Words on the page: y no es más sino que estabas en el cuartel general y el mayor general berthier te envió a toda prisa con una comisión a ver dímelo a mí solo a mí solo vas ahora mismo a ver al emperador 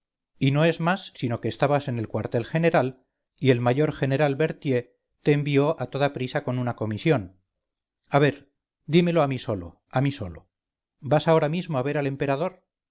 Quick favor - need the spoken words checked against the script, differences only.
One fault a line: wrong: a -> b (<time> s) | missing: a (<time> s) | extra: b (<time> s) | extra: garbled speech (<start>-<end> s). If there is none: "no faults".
no faults